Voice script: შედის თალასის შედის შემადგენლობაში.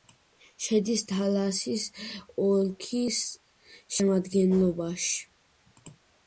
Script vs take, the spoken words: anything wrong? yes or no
yes